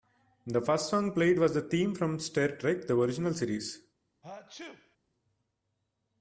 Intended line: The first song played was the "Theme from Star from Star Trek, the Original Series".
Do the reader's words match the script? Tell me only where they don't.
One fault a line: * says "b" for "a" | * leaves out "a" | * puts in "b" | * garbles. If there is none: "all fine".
* leaves out "from Star"